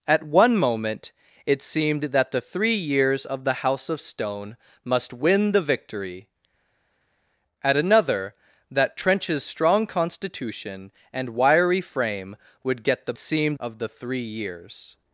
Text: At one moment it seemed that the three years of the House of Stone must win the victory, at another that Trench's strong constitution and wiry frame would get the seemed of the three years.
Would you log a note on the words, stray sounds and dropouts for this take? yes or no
no